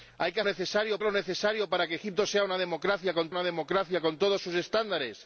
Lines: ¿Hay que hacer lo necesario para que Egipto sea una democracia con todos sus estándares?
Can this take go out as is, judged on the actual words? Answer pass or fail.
fail